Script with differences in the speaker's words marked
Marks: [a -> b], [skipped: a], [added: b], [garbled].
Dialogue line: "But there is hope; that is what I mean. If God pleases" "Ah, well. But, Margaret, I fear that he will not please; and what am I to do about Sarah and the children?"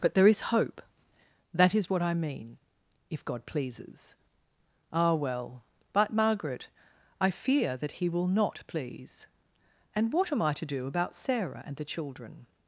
"But there is hope; that is what I mean. If God pleases" "Ah, well. But, Margaret, I fear that he will not please; and what am I to do about Sarah and the children?"